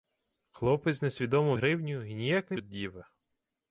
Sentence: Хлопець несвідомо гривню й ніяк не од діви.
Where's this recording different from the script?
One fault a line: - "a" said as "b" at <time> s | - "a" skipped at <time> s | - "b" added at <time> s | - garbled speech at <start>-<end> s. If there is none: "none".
none